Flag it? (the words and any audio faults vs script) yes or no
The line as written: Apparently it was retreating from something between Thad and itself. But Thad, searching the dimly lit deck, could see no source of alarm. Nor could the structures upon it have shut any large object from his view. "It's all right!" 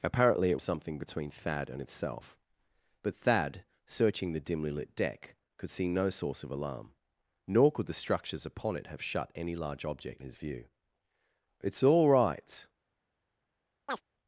yes